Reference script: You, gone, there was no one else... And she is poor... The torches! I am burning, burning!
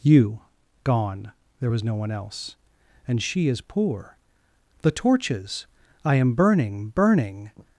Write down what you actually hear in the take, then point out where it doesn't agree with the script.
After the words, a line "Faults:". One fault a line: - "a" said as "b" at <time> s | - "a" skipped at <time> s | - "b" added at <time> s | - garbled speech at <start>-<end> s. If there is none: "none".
You, gone, there was no one else... And she is poor... The torches! I am burning, burning!
Faults:
none